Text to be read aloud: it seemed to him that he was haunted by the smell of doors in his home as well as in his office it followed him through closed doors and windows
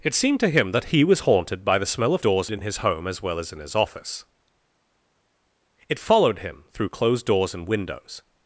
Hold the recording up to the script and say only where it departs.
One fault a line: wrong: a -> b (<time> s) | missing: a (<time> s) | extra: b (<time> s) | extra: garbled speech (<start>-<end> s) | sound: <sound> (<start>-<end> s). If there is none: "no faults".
no faults